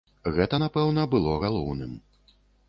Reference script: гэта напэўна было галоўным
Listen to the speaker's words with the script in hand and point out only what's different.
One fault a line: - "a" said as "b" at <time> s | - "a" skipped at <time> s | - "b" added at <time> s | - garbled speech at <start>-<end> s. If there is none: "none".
none